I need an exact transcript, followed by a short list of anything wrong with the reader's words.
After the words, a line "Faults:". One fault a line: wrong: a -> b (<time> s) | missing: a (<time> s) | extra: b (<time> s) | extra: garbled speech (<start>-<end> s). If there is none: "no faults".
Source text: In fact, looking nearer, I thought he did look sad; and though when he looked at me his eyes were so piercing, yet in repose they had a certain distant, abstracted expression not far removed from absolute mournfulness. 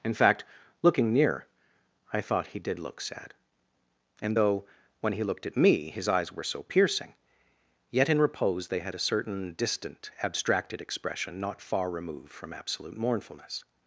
In fact, looking near, I thought he did look sad; and though when he looked at me his eyes were so piercing, yet in repose they had a certain distant, abstracted expression not far removed from absolute mournfulness.
Faults:
wrong: nearer -> near (1.1 s)